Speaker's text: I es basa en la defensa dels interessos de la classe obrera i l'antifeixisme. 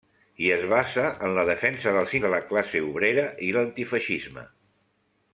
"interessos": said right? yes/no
no